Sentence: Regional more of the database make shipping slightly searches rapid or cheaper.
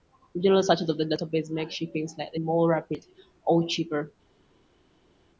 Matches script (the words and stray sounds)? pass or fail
fail